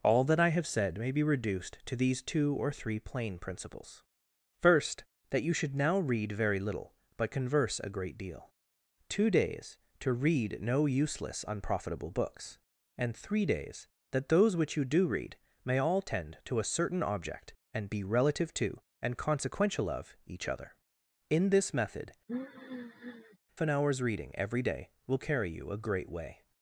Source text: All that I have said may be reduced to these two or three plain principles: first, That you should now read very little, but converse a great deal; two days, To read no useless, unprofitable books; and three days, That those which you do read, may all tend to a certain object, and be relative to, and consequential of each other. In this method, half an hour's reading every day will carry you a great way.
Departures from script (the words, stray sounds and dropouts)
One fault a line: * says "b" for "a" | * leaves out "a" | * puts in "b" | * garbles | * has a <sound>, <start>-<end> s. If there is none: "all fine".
* leaves out "half"
* has a sigh, 22.3-23.4 s